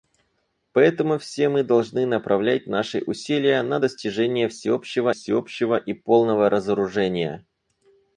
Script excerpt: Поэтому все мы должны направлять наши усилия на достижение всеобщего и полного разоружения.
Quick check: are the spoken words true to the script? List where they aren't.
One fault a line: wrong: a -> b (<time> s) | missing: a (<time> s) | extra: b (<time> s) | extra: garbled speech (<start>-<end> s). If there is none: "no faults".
extra: всеобщего (5.1 s)